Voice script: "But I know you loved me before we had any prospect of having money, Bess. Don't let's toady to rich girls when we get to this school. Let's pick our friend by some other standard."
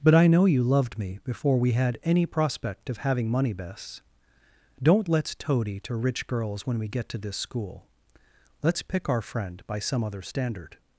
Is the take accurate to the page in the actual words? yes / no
yes